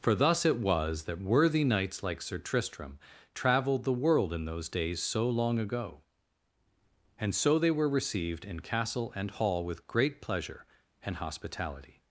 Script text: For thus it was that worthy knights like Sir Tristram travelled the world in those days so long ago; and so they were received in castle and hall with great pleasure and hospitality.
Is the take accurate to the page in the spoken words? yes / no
yes